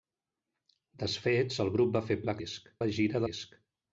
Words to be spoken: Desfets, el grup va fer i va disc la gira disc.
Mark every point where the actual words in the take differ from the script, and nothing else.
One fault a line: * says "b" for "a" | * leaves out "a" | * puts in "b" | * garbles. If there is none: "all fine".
all fine